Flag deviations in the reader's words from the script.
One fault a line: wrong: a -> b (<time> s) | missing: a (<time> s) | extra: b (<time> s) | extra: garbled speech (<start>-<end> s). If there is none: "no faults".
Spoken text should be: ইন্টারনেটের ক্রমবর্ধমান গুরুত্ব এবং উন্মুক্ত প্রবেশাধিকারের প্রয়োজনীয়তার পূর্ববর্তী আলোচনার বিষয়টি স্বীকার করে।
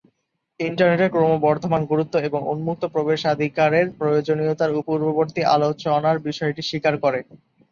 no faults